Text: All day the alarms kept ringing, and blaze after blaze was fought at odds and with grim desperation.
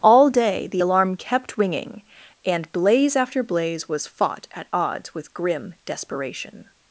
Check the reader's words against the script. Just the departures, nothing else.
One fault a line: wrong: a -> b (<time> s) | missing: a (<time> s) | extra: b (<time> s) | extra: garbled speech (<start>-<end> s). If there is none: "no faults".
wrong: alarms -> alarm (0.8 s)
missing: and (5.1 s)